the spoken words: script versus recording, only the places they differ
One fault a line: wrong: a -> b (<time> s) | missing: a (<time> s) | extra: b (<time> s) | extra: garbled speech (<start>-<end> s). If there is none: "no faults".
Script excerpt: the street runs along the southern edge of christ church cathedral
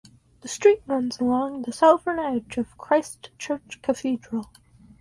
no faults